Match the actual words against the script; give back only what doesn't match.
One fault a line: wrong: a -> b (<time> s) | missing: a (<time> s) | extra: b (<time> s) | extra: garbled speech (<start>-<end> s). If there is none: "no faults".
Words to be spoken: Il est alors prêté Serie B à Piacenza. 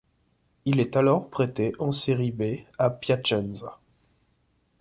extra: en (1.8 s)